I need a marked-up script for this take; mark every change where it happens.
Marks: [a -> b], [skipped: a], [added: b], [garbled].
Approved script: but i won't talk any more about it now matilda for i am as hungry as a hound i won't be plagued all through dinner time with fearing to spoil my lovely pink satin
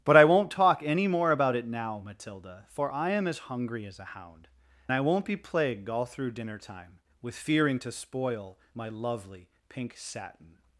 but i won't talk any more about it now matilda for i am as hungry as a hound i won't be plagued all through dinner time with fearing to spoil my lovely pink satin